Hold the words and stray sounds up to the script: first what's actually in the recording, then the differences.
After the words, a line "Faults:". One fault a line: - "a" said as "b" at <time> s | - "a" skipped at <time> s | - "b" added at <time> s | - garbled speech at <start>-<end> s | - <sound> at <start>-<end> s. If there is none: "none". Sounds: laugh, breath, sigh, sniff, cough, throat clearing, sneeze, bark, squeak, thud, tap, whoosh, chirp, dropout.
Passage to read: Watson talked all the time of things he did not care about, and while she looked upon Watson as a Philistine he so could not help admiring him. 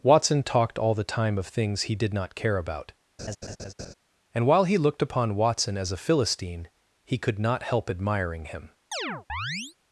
Watson talked all the time of things he did not care about, and while he looked upon Watson as a Philistine he could not help admiring him.
Faults:
- laugh at 3.2-3.9 s
- "she" said as "he" at 4.6 s
- "so" skipped at 7.2 s
- chirp at 8.9-9.8 s